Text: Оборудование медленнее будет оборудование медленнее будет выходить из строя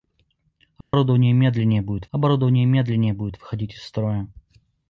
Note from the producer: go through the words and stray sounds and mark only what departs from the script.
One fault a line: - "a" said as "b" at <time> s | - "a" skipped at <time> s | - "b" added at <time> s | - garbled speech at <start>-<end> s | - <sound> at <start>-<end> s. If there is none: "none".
- dropout at 0.8-0.9 s